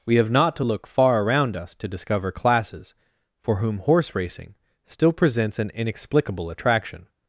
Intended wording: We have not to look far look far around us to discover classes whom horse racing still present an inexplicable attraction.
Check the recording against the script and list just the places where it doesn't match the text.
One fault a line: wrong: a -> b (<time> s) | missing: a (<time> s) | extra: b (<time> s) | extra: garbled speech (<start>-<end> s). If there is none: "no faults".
missing: look far (1.2 s)
extra: for (3.4 s)
wrong: present -> presents (5.1 s)